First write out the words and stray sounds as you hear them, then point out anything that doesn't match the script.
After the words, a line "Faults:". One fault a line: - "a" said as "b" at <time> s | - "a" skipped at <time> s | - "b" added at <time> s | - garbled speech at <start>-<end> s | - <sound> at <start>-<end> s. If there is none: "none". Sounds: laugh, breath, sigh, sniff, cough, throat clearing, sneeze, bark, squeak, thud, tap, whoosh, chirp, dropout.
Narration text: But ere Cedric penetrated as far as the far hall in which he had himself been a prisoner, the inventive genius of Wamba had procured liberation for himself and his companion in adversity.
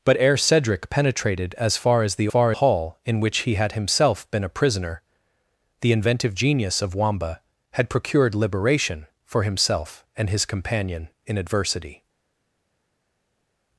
But ere Cedric penetrated as far as the far hall in which he had himself been a prisoner, the inventive genius of Wamba had procured liberation for himself and his companion in adversity.
Faults:
none